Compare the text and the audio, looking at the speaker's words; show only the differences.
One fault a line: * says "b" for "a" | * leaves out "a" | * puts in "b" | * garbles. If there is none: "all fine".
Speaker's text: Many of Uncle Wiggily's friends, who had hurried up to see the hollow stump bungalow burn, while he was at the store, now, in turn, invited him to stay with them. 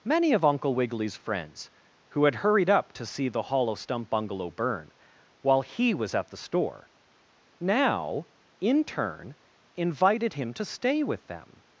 all fine